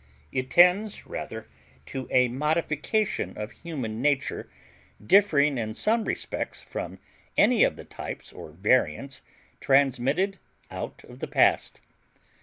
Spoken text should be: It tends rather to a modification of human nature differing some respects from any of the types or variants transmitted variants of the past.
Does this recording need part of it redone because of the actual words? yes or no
yes